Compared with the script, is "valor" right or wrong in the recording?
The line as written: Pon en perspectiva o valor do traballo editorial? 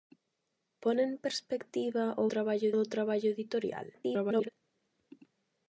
wrong